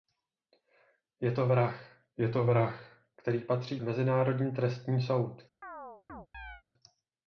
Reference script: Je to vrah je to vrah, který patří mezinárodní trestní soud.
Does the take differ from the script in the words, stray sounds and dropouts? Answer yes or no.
yes